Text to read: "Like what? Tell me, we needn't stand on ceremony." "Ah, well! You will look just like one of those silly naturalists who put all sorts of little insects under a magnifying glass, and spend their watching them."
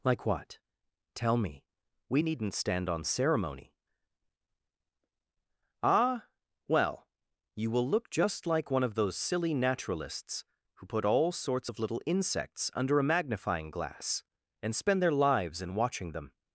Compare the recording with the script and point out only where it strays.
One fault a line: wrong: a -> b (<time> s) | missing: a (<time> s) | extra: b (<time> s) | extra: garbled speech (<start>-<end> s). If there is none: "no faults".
extra: lives in (15.1 s)